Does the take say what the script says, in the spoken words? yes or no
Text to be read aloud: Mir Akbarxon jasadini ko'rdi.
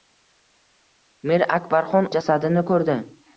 yes